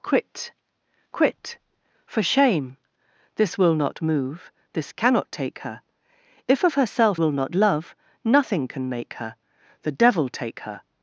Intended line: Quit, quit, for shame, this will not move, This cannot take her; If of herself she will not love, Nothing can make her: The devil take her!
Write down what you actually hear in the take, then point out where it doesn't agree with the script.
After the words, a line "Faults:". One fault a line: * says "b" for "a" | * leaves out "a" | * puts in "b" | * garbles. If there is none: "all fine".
Quit, quit, for shame, this will not move, This cannot take her; If of herself will not love, Nothing can make her: The devil take her!
Faults:
* leaves out "she"